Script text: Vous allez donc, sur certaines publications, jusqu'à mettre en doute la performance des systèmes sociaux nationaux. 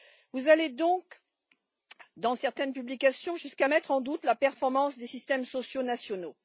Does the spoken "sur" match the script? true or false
false